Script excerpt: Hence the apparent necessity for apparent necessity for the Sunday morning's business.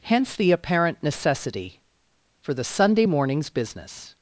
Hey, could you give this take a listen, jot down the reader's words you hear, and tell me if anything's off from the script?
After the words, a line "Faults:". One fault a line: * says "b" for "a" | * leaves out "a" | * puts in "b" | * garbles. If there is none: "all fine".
Hence the apparent necessity for the Sunday morning's business.
Faults:
* leaves out "apparent necessity for"